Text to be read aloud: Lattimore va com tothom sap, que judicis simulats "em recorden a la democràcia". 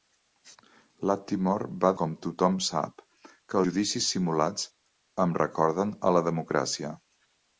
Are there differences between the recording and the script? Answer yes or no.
no